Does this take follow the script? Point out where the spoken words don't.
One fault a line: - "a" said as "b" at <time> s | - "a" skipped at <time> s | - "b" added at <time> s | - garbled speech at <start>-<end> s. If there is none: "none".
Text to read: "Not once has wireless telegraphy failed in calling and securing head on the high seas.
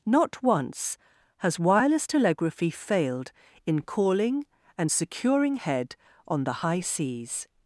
none